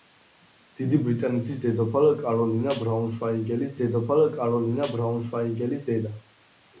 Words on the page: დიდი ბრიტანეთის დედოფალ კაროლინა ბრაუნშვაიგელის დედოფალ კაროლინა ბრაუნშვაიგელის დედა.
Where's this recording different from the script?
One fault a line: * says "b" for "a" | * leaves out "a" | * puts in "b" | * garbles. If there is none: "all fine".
all fine